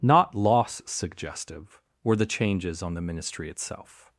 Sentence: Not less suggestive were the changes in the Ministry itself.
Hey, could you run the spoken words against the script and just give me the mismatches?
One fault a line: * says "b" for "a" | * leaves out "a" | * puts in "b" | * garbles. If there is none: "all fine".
* says "loss" for "less"
* says "on" for "in"